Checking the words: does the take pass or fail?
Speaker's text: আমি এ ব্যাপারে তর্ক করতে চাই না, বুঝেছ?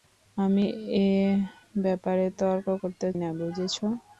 fail